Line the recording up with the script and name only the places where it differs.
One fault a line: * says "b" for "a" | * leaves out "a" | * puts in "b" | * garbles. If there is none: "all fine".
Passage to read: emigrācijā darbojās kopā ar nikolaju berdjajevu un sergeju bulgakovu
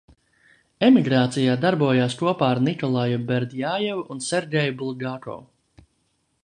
all fine